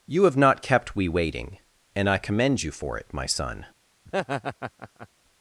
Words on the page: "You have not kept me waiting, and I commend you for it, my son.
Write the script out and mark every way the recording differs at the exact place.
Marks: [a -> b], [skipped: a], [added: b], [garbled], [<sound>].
"You have not kept [me -> we] waiting, and I commend you for it, my son. [laugh]